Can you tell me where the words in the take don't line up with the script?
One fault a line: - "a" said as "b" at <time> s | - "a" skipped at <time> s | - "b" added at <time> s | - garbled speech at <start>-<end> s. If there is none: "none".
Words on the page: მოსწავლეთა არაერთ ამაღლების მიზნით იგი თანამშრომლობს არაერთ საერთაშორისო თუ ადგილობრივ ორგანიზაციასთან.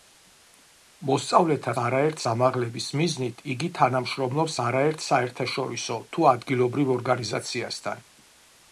none